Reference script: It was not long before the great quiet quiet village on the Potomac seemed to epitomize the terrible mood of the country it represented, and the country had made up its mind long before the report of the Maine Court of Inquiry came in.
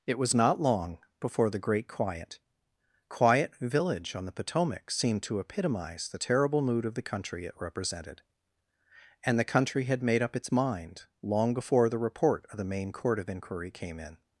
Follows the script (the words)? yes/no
yes